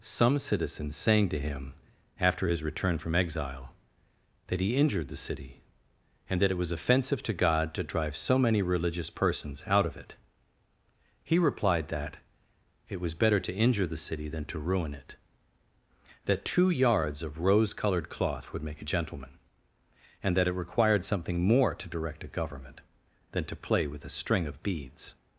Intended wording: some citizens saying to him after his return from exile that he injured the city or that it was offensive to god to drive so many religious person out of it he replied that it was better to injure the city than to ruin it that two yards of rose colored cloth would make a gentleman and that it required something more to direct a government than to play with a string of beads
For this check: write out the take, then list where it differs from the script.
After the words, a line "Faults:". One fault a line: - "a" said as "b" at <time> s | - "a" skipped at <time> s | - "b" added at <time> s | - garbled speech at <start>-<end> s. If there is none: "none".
some citizens saying to him after his return from exile that he injured the city and that it was offensive to god to drive so many religious persons out of it he replied that it was better to injure the city than to ruin it that two yards of rose colored cloth would make a gentleman and that it required something more to direct a government than to play with a string of beads
Faults:
- "or" said as "and" at 6.3 s
- "person" said as "persons" at 9.1 s